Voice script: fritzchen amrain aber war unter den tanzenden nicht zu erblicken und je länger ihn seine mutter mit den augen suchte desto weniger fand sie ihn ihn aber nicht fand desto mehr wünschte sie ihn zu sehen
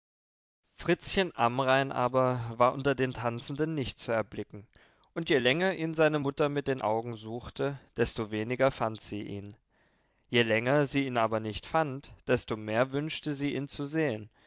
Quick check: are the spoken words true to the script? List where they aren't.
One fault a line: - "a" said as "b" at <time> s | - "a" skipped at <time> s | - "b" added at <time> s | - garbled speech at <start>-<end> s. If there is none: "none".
- "je länger sie" added at 10.3 s